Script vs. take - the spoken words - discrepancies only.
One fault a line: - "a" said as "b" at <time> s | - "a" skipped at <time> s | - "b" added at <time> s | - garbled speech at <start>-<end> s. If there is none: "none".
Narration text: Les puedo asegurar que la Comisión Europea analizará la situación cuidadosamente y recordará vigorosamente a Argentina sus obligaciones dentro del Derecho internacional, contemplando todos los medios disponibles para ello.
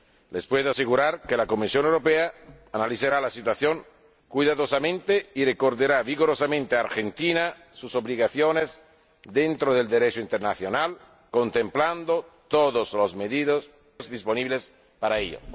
none